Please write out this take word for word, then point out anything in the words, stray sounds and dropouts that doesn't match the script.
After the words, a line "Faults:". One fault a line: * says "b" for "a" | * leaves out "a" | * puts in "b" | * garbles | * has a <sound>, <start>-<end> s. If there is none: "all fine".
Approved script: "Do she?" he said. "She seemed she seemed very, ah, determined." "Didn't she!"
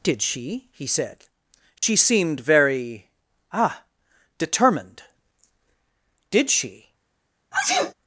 "Did she?" he said. "She seemed very, ah, determined." "Did she!"
Faults:
* says "Did" for "Do"
* has a dropout, 1.8-1.8 s
* leaves out "she seemed"
* says "Did" for "Didn't"
* has a sneeze, 7.5-7.9 s